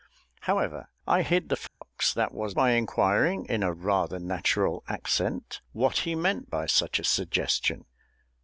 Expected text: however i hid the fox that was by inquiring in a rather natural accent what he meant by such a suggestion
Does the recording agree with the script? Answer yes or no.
yes